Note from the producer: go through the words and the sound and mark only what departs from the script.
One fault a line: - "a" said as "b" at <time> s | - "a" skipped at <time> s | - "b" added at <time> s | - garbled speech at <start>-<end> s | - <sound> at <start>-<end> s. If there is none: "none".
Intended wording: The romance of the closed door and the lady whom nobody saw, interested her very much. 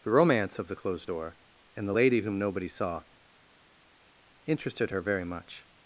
none